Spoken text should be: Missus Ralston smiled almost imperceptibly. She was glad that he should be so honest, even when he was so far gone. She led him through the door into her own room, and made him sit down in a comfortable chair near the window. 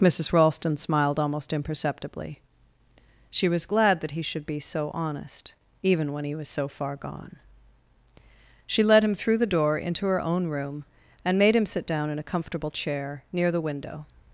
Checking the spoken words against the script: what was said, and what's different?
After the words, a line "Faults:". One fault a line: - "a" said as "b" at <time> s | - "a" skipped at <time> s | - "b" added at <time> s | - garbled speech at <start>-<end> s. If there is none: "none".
Missus Ralston smiled almost imperceptibly. She was glad that he should be so honest, even when he was so far gone. She led him through the door into her own room, and made him sit down in a comfortable chair near the window.
Faults:
none